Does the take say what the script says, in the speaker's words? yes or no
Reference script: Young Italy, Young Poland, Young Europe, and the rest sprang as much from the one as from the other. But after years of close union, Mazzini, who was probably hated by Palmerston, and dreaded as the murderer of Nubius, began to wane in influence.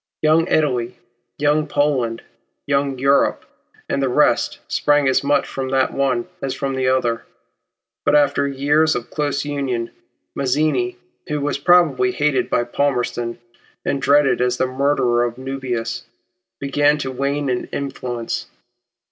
yes